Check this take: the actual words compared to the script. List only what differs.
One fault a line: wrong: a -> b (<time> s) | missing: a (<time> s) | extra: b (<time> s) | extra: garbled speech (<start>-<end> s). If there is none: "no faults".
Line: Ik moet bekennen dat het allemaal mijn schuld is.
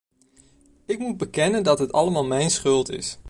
no faults